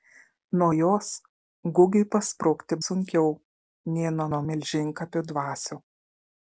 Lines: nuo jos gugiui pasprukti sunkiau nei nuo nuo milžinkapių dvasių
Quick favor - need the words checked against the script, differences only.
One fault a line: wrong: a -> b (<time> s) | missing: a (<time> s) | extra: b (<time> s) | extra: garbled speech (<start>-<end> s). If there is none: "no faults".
no faults